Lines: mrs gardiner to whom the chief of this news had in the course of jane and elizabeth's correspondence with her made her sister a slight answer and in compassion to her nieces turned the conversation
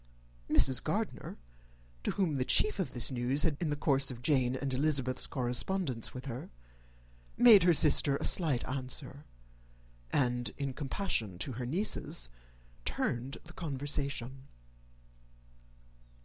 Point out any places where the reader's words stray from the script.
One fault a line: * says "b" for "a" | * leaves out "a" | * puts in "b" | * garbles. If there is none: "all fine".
all fine